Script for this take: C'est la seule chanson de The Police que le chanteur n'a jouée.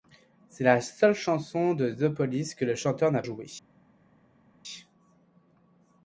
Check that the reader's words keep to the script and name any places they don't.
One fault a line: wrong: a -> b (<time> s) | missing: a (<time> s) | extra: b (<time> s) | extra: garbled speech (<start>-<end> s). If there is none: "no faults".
no faults